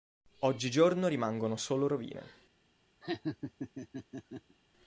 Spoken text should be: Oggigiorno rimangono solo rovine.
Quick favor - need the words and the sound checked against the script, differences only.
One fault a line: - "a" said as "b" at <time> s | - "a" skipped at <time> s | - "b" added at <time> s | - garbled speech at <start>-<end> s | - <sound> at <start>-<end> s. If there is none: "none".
- laugh at 3.0-4.6 s